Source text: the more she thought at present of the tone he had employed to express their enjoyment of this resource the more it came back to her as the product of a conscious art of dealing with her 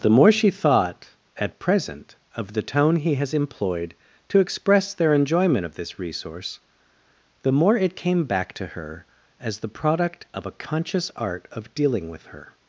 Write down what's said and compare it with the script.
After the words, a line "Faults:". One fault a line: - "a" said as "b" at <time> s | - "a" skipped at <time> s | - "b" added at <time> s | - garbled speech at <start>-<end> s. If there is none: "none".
the more she thought at present of the tone he has employed to express their enjoyment of this resource the more it came back to her as the product of a conscious art of dealing with her
Faults:
- "had" said as "has" at 3.1 s